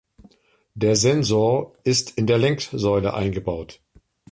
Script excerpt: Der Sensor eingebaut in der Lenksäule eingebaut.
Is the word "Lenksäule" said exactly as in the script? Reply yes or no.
yes